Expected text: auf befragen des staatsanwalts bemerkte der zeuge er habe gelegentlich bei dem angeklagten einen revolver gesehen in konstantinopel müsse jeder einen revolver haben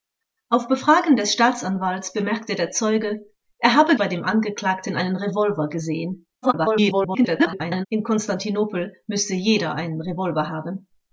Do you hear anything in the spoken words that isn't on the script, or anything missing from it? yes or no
yes